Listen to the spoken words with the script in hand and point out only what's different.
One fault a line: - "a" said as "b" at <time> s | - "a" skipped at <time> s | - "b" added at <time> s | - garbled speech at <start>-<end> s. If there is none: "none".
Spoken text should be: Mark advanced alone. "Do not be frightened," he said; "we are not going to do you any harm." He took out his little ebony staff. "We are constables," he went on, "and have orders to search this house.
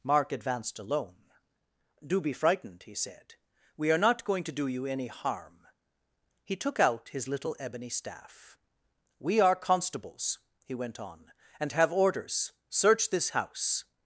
- "not" skipped at 2.2 s
- "to" skipped at 12.5 s